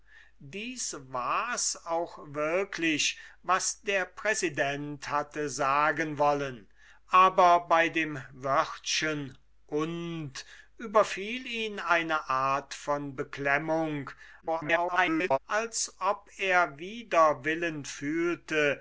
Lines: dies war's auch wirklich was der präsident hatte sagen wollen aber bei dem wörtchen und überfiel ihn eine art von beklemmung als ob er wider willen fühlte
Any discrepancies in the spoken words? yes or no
yes